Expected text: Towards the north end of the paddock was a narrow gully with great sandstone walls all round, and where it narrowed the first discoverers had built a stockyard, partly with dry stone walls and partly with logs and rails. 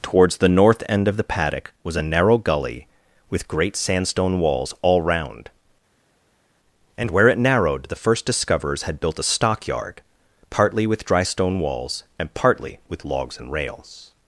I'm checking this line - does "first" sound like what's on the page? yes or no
yes